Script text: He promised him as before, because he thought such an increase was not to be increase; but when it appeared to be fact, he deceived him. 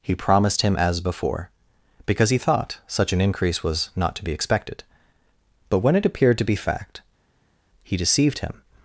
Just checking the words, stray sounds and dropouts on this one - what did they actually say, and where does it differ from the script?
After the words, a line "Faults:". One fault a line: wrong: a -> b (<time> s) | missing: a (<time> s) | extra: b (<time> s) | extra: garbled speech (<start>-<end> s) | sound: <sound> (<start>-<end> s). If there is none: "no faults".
He promised him as before, because he thought such an increase was not to be expected; but when it appeared to be fact, he deceived him.
Faults:
wrong: increase -> expected (4.3 s)